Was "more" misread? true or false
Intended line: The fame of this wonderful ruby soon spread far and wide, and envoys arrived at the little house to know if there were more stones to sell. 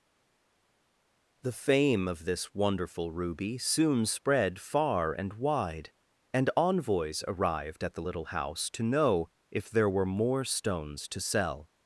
false